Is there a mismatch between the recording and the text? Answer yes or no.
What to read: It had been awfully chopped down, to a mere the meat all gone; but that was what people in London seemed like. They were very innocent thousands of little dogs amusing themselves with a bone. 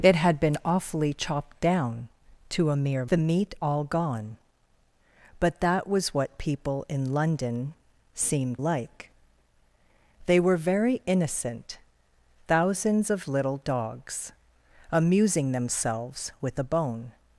no